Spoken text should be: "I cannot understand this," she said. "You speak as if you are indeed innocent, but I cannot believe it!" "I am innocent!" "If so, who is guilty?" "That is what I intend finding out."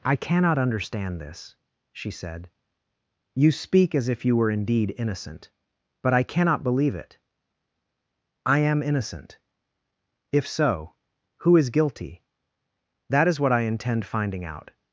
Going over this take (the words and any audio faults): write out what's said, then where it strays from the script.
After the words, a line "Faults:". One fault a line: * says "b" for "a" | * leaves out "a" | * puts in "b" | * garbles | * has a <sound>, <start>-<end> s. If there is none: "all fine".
"I cannot understand this," she said. "You speak as if you were indeed innocent, but I cannot believe it!" "I am innocent!" "If so, who is guilty?" "That is what I intend finding out."
Faults:
* says "were" for "are"